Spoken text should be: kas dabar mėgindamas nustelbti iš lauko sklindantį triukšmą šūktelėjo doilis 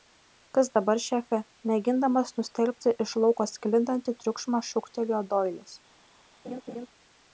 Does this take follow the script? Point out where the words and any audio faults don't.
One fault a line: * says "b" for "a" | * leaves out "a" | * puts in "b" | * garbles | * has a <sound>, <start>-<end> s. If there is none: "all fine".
* puts in "šefe"
* has a laugh, 6.4-6.9 s